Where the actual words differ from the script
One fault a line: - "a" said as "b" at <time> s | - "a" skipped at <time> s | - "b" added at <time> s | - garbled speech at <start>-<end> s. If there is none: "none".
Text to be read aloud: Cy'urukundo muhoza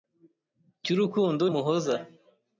none